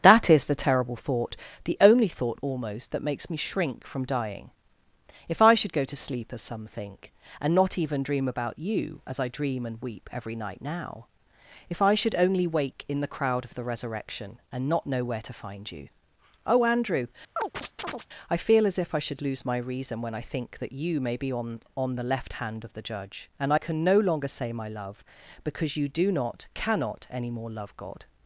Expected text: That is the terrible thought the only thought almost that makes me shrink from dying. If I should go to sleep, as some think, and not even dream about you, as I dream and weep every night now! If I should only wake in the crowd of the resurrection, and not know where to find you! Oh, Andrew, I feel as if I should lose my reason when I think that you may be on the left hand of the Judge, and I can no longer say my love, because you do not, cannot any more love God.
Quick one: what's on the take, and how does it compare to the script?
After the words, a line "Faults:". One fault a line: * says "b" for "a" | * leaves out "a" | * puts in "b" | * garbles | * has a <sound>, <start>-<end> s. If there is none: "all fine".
That is the terrible thought the only thought almost that makes me shrink from dying. If I should go to sleep, as some think, and not even dream about you, as I dream and weep every night now! If I should only wake in the crowd of the resurrection, and not know where to find you! Oh, Andrew, I feel as if I should lose my reason when I think that you may be on on the left hand of the Judge, and I can no longer say my love, because you do not, cannot any more love God.
Faults:
* has a chirp, 17.4-18.1 s
* puts in "on"